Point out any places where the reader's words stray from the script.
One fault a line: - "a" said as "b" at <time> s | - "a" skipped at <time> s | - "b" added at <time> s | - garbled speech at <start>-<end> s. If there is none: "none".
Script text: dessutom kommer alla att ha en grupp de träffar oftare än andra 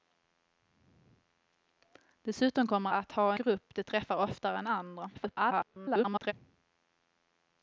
- "alla" skipped at 2.9 s
- "en" skipped at 3.3 s
- garbled speech at 5.1-6.3 s